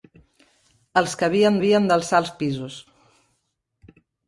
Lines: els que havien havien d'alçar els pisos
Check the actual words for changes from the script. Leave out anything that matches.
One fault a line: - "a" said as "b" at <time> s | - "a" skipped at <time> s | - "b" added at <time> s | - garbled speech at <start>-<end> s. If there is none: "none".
none